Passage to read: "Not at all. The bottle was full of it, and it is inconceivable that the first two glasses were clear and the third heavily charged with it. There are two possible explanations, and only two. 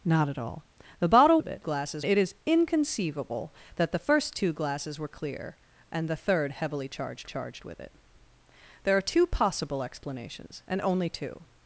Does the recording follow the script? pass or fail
fail